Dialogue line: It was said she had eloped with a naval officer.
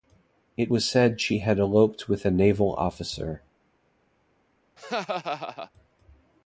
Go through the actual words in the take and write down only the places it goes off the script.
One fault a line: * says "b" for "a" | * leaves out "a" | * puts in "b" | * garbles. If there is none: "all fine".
all fine